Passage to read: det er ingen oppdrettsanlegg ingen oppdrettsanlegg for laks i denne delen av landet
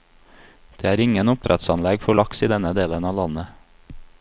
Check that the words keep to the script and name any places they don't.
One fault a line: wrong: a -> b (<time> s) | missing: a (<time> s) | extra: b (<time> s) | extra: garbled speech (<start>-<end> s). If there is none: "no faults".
missing: ingen oppdrettsanlegg (2.0 s)